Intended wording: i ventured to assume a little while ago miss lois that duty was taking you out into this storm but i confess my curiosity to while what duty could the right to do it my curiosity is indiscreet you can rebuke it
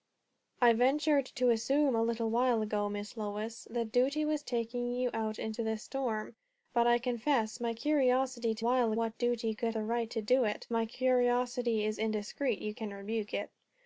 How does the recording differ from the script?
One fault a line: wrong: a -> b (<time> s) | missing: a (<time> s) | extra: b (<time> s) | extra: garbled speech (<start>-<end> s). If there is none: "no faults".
no faults